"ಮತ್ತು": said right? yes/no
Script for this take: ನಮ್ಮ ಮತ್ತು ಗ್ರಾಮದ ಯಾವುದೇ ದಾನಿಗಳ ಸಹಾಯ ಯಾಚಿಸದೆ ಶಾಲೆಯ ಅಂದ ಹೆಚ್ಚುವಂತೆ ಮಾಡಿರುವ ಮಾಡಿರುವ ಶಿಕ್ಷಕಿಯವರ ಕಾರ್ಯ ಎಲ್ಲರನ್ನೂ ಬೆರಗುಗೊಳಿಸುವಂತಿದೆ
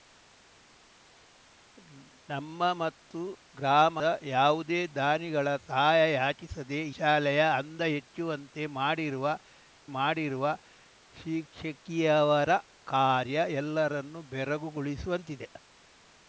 yes